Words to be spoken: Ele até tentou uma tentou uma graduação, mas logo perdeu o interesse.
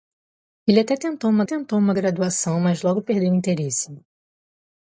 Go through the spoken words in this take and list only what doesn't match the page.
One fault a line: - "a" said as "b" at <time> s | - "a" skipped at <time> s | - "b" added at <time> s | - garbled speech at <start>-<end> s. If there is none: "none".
none